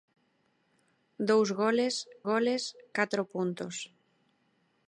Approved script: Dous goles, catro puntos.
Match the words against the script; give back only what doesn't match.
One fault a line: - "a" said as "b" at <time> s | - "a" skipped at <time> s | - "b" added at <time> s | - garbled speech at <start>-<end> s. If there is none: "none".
- "goles" added at 2.3 s